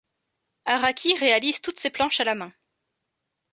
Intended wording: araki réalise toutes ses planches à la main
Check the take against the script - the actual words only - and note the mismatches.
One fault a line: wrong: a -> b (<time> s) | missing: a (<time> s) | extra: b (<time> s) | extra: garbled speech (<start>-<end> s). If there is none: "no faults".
no faults